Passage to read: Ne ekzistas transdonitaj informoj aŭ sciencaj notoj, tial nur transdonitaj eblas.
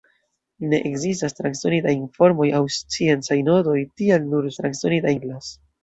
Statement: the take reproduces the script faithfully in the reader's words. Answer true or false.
true